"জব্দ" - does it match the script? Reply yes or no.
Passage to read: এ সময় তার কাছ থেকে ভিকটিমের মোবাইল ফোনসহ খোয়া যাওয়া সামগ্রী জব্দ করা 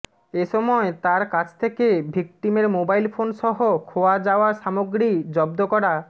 yes